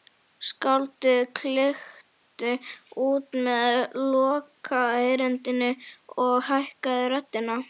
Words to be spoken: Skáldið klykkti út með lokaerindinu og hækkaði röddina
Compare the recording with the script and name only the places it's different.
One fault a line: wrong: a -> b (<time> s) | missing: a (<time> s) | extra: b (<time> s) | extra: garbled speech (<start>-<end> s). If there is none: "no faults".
no faults